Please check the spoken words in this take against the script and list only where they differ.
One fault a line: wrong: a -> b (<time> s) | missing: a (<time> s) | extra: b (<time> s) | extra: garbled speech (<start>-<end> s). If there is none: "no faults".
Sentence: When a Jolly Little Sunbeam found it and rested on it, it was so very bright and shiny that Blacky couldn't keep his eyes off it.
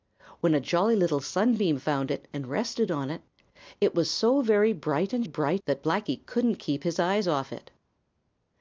wrong: shiny -> bright (5.2 s)